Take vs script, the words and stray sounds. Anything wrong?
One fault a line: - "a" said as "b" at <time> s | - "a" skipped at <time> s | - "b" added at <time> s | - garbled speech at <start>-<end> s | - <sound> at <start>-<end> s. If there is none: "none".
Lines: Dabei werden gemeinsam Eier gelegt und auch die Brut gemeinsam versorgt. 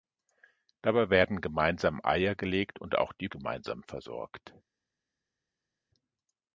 - "Brut" skipped at 3.3 s